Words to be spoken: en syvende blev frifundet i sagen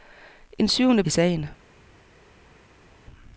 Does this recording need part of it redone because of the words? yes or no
yes